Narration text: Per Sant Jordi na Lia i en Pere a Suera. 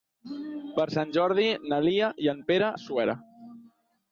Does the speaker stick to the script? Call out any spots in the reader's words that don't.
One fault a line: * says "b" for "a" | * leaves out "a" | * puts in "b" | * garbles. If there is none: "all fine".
all fine